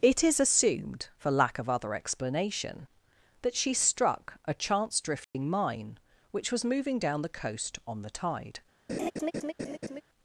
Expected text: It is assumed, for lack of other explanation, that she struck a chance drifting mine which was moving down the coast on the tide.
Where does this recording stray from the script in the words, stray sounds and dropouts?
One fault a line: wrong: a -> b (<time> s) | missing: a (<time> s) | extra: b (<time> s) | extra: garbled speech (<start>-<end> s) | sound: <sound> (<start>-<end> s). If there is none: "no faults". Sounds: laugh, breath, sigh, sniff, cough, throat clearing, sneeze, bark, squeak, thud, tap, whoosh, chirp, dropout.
sound: dropout (5.2-5.3 s)
sound: laugh (8.9-10.0 s)